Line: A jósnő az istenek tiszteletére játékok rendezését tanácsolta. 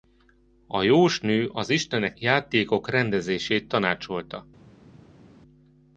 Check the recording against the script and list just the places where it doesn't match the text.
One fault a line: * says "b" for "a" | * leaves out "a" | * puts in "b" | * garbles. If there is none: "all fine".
* leaves out "tiszteletére"